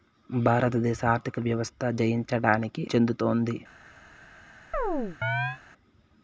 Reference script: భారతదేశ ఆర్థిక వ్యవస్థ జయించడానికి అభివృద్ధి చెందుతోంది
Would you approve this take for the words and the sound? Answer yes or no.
no